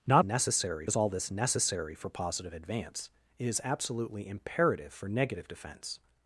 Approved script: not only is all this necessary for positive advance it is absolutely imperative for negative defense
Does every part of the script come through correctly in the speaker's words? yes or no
no